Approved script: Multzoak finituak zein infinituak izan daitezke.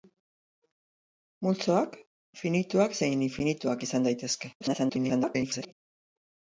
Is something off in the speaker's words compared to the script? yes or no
yes